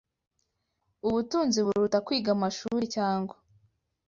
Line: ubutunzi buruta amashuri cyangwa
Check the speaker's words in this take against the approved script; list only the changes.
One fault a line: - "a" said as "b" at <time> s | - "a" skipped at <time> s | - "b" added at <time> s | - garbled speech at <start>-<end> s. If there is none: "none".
- "kwiga" added at 2.1 s